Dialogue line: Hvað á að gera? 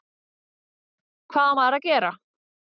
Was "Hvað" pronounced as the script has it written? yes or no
yes